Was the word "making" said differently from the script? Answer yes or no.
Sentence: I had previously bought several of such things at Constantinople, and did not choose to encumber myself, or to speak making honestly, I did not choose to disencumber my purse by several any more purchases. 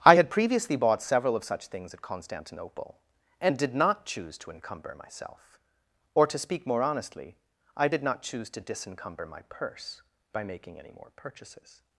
yes